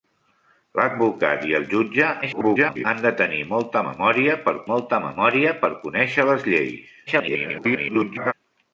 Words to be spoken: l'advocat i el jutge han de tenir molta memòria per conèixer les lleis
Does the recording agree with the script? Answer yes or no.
no